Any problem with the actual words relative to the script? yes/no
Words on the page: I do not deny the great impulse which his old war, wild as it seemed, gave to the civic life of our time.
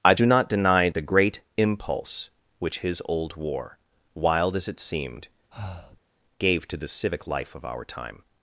no